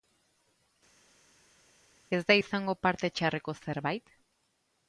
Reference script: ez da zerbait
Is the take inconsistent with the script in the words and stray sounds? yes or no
yes